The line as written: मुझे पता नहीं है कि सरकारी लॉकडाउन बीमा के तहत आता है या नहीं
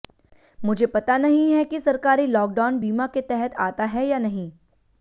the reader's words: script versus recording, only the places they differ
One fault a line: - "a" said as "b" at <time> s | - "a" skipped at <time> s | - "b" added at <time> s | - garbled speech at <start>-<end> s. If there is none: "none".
none